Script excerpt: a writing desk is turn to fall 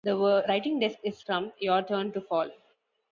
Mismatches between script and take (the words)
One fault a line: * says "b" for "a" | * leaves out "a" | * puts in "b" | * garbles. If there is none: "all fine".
* says "the" for "a"
* puts in "from your"